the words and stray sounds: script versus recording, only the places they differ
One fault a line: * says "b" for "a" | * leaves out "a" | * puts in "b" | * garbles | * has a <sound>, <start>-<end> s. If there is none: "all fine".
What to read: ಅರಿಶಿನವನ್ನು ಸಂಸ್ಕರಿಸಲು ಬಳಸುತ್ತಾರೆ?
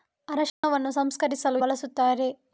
* has a dropout, 0.5-0.6 s